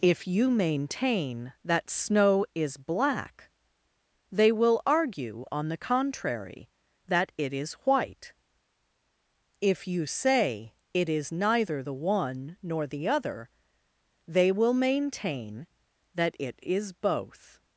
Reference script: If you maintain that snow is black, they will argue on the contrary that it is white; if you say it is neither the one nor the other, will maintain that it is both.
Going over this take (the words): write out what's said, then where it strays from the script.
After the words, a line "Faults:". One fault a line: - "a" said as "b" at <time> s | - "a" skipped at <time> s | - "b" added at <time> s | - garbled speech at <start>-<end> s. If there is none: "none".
If you maintain that snow is black, they will argue on the contrary that it is white; if you say it is neither the one nor the other, they will maintain that it is both.
Faults:
- "they" added at 14.3 s